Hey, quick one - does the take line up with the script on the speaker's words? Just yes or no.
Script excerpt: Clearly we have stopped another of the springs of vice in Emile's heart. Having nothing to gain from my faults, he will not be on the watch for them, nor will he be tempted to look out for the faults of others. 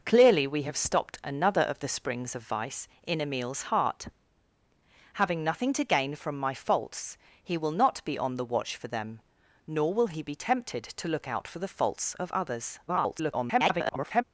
no